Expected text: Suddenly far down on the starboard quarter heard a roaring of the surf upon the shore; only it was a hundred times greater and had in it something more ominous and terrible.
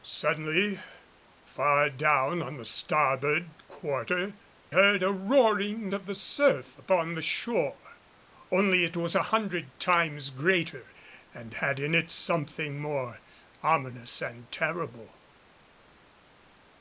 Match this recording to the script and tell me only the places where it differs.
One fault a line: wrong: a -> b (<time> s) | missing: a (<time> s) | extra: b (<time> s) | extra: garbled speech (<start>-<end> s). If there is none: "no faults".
no faults